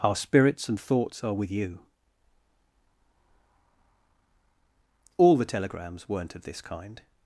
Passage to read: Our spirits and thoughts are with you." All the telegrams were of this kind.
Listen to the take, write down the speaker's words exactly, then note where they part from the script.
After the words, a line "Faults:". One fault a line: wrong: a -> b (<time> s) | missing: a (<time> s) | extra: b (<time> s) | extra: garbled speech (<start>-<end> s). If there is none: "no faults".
Our spirits and thoughts are with you." All the telegrams weren't of this kind.
Faults:
wrong: were -> weren't (6.1 s)